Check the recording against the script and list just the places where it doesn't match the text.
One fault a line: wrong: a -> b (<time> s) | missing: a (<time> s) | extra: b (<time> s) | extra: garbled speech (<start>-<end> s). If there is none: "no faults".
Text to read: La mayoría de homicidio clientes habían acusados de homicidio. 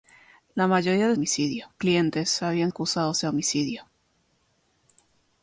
no faults